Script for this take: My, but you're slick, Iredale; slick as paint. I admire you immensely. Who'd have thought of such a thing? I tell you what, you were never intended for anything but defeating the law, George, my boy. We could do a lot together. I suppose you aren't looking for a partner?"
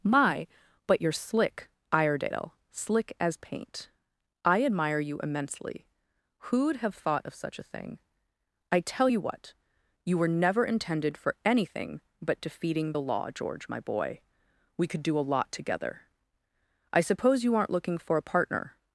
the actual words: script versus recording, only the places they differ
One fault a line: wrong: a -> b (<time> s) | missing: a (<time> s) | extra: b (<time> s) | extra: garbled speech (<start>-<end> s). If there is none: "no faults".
no faults